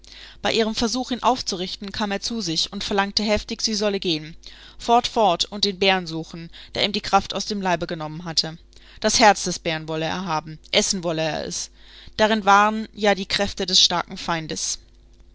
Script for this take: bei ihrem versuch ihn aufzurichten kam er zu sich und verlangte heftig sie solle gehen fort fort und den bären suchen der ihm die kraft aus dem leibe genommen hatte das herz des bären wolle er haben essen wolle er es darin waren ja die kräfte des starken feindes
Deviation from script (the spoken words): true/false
false